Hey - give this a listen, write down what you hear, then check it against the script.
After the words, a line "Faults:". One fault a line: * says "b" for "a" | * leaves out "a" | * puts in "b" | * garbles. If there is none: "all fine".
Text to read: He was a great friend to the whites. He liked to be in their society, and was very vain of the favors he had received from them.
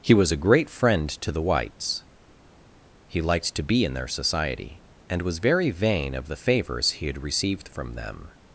He was a great friend to the whites. He liked to be in their society, and was very vain of the favors he had received from them.
Faults:
all fine